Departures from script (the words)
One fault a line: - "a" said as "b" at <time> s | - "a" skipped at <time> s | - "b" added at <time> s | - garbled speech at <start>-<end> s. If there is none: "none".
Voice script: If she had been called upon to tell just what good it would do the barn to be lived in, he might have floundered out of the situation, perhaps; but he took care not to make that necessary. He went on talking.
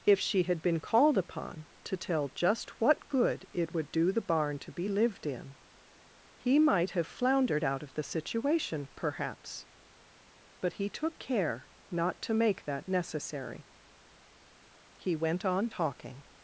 none